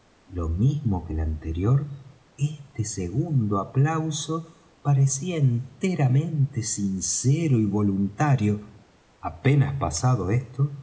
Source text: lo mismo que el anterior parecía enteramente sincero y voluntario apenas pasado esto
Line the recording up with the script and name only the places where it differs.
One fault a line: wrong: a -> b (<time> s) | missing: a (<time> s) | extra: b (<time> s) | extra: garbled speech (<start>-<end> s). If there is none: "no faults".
extra: este segundo aplauso (2.4 s)